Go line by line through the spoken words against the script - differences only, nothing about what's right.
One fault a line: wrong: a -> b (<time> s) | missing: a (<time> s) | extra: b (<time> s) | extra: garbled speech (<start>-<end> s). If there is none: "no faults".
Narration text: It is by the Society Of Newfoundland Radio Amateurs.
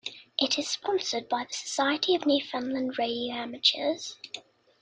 extra: sponsored (0.7 s)